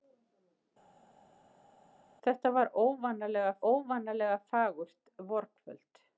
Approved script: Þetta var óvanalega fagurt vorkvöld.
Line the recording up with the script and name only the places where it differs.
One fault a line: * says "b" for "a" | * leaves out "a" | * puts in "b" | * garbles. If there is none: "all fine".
* puts in "óvanalega"